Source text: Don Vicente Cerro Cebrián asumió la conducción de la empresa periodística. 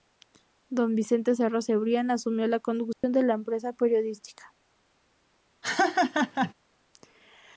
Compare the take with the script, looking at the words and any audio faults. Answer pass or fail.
fail